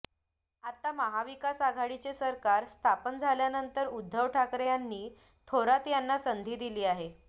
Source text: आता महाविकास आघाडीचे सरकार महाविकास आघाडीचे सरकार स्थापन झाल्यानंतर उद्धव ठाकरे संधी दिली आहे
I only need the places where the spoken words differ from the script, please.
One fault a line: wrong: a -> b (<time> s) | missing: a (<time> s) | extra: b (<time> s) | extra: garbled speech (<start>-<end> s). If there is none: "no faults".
missing: महाविकास आघाडीचे सरकार (2.6 s)
extra: यांनी थोरात यांना (4.7 s)